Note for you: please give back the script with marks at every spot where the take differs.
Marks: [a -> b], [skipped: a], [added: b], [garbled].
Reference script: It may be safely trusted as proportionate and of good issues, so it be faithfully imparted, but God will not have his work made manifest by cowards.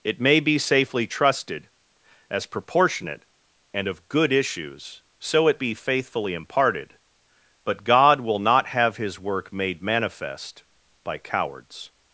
It may be safely trusted as proportionate and of good issues, so it be faithfully imparted, but God will not have his work made manifest by cowards.